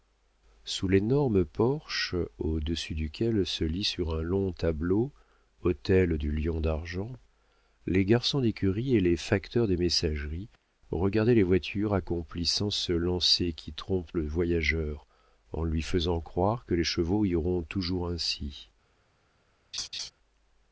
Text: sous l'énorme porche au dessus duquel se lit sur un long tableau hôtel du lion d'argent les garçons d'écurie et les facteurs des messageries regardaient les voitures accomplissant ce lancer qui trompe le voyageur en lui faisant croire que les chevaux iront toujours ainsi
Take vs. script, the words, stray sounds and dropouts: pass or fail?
fail